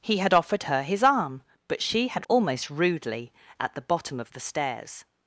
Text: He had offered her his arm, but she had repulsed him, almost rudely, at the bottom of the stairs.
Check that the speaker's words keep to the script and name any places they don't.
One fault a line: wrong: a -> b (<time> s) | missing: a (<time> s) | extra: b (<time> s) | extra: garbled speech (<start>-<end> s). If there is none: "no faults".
missing: repulsed him (2.2 s)